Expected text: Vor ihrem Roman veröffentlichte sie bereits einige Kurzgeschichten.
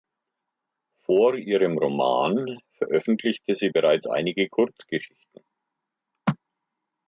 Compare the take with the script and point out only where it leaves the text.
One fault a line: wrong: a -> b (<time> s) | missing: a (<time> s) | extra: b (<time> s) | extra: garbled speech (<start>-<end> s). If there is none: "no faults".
no faults